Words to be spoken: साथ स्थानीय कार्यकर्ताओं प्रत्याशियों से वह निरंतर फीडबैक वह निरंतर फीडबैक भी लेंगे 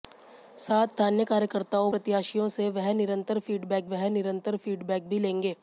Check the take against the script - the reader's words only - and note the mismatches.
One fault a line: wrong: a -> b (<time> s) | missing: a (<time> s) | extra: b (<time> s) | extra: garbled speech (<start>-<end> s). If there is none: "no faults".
no faults